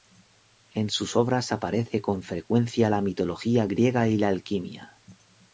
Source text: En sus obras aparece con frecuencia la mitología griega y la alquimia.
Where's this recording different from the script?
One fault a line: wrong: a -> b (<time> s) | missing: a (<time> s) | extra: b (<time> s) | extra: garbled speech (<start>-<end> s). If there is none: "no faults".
no faults